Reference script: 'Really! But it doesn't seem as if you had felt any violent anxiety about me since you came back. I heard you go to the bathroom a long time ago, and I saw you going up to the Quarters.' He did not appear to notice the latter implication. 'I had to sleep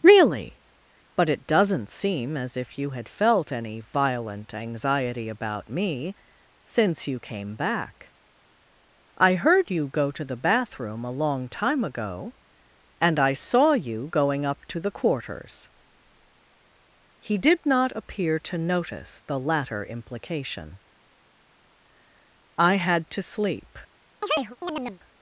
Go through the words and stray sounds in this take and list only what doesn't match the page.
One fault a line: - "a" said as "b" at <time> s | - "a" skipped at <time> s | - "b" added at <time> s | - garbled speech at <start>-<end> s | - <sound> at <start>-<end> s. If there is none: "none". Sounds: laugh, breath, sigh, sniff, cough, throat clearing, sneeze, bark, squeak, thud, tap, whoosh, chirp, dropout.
- chirp at 24.2-25.0 s